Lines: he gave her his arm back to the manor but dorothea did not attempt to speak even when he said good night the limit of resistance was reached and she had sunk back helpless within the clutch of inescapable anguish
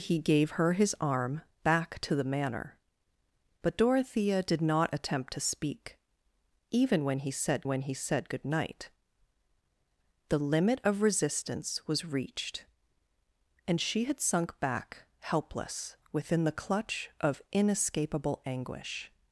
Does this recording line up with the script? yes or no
no